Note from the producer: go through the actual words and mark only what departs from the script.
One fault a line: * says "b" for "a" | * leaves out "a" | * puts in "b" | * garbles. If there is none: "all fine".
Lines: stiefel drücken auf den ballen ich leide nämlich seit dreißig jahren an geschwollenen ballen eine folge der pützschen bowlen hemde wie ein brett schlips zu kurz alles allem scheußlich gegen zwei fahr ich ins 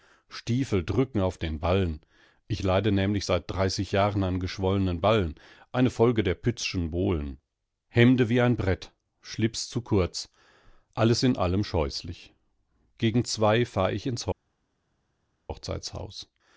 * puts in "in"